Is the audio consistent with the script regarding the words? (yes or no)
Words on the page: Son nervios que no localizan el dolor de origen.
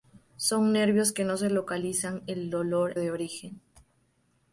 yes